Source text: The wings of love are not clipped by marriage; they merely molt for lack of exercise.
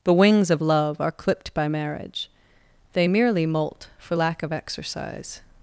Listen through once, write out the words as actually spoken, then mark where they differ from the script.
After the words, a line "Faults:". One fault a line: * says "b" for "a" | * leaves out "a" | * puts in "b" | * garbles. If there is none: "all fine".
The wings of love are clipped by marriage; they merely molt for lack of exercise.
Faults:
* leaves out "not"